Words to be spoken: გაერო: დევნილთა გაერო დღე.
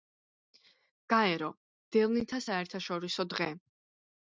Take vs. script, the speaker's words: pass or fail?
fail